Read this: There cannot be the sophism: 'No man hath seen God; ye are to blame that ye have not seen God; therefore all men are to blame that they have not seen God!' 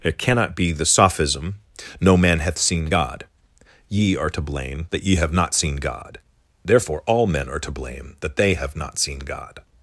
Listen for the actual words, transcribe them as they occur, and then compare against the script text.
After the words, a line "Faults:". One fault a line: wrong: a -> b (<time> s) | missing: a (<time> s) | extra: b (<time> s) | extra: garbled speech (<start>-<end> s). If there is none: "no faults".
It cannot be the sophism: 'No man hath seen God; ye are to blame that ye have not seen God; therefore all men are to blame that they have not seen God!'
Faults:
wrong: There -> It (0.0 s)